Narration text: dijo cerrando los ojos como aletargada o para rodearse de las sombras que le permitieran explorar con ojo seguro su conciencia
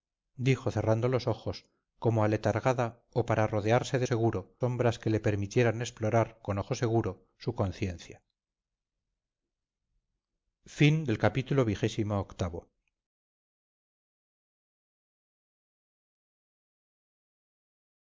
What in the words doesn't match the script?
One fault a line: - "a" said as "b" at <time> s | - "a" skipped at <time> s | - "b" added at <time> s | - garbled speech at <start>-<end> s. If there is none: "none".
- "las" said as "seguro" at 4.0 s